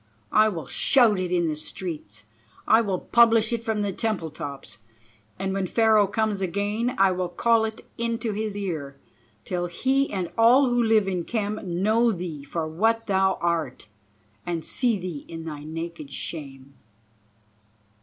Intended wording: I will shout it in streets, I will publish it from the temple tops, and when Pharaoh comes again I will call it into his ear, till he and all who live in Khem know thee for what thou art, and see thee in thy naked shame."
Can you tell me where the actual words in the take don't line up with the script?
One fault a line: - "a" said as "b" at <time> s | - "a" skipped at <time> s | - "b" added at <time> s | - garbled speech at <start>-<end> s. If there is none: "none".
- "the" added at 1.4 s